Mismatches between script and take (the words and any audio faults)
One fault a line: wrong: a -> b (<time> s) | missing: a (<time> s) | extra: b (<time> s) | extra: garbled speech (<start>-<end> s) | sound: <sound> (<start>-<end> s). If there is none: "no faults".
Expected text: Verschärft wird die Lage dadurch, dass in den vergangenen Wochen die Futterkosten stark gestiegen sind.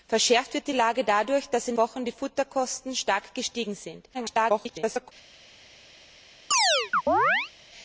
missing: den vergangenen (1.8 s)
extra: garbled speech (4.1-5.1 s)
sound: chirp (6.5-7.5 s)